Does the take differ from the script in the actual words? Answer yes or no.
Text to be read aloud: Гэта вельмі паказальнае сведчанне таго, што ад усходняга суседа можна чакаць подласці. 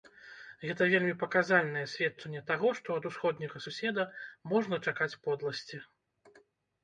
no